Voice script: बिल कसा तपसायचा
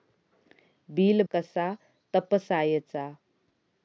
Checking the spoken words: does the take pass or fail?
pass